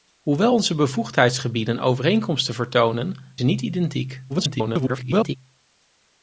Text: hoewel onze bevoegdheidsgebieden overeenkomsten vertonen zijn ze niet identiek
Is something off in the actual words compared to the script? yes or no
yes